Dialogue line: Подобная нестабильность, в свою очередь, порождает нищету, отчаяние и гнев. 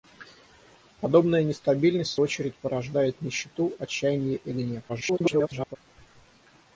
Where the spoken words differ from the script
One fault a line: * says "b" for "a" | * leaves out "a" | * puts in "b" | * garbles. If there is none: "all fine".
* leaves out "свою"
* garbles